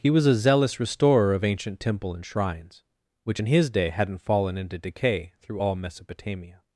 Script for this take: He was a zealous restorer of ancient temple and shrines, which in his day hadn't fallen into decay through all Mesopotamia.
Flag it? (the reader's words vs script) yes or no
no